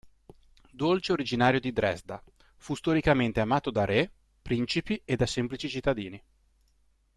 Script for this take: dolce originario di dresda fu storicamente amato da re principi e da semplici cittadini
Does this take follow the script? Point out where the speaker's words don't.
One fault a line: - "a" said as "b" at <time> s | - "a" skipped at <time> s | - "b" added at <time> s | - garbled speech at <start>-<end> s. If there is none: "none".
none